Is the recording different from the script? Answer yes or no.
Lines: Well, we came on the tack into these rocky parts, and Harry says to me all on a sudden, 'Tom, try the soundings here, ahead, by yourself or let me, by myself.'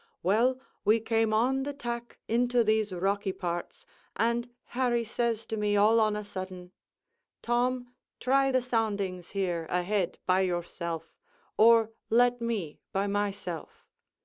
no